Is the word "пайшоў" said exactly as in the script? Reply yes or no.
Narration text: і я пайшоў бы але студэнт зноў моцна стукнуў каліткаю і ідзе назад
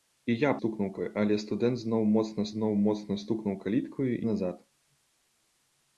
no